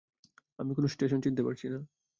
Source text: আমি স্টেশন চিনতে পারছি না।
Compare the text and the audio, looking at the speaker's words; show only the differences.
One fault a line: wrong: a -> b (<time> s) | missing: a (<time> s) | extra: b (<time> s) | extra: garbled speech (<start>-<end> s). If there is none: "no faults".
extra: কোনো (0.7 s)